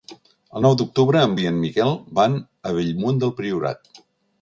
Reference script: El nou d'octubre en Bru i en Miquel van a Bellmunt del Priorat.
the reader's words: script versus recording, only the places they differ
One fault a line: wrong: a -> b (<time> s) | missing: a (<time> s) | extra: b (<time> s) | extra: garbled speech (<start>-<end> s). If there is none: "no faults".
missing: Bru (1.3 s)